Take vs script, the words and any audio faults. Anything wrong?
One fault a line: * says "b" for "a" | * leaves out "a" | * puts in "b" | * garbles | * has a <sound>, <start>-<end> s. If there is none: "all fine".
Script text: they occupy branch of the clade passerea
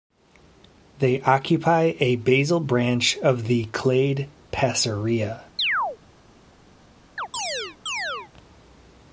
* puts in "a basal"
* has a chirp, 5.6-6.0 s
* has a chirp, 7.2-8.3 s